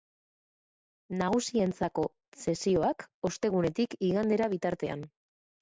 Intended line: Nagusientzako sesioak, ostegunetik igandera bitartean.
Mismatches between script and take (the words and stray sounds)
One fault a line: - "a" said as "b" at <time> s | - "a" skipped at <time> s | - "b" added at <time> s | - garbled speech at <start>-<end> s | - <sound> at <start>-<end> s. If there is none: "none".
none